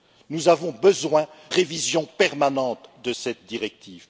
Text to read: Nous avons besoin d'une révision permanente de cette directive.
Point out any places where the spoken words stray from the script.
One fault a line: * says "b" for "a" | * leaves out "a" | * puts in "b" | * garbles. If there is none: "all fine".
* leaves out "d'une"